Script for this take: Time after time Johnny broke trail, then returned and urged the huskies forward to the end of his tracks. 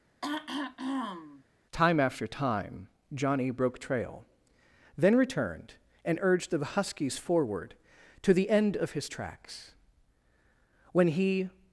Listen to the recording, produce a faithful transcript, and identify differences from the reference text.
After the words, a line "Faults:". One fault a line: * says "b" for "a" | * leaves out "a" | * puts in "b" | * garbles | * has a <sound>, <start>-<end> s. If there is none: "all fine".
Time after time Johnny broke trail, then returned and urged the huskies forward to the end of his tracks. When he
Faults:
* has a throat clearing, 0.2-1.4 s
* puts in "When he"